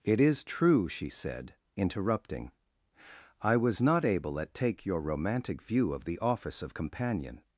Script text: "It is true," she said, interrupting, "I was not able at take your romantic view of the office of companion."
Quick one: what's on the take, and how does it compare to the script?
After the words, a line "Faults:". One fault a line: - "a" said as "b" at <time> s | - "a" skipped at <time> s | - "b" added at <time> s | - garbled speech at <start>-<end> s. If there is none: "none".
"It is true," she said, interrupting, "I was not able at take your romantic view of the office of companion."
Faults:
none